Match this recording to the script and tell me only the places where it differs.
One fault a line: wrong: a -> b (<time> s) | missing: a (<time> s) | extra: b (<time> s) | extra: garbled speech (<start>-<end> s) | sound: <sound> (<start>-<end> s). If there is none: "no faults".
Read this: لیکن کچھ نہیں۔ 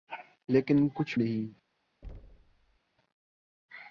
sound: thud (2.0-2.8 s)